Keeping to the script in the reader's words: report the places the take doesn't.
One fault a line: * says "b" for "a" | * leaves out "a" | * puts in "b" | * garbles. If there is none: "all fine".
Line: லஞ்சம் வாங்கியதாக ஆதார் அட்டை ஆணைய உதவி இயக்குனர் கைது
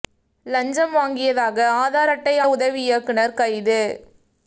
* leaves out "ஆணைய"